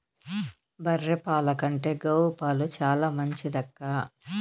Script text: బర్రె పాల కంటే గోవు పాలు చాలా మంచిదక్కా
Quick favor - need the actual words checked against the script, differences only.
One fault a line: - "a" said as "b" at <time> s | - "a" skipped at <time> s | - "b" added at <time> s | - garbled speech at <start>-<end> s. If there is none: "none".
none